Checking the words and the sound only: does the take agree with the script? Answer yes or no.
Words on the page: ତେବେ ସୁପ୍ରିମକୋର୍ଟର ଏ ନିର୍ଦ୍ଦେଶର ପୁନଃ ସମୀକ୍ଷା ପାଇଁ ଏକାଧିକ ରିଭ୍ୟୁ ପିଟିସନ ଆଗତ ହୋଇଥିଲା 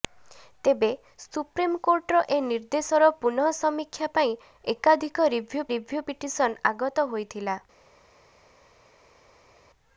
no